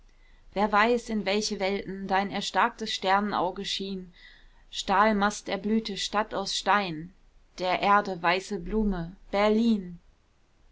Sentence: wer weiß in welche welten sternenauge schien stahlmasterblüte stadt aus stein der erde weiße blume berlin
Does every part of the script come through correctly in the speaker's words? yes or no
no